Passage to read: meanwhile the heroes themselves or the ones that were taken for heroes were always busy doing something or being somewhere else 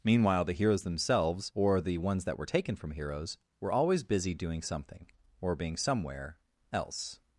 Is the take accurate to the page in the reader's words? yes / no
no